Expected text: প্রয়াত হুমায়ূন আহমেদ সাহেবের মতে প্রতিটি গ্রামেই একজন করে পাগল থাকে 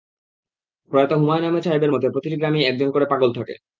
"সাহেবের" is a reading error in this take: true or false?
false